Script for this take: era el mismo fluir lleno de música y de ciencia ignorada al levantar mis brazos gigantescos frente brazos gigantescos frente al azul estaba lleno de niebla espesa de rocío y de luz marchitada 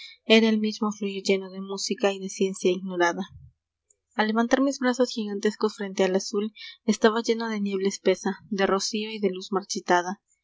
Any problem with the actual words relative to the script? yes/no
yes